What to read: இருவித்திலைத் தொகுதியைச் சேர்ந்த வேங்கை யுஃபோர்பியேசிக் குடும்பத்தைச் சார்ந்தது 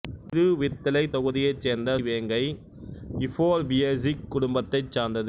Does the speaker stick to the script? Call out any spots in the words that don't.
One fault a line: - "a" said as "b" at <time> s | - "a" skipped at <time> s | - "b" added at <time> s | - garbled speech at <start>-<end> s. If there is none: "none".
none